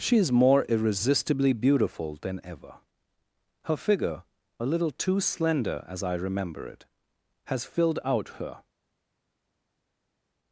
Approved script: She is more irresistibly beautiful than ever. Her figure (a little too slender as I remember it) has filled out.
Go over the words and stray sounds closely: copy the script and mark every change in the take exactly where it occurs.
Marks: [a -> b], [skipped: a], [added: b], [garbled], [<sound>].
She is more irresistibly beautiful than ever. Her figure (a little too slender as I remember it) has filled out. [added: Her]